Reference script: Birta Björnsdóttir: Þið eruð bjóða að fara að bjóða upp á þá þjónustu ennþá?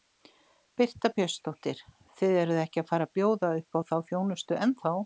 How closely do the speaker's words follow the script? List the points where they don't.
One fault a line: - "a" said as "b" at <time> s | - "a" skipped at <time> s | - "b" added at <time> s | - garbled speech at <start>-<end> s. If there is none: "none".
- "bjóða" said as "ekki" at 2.6 s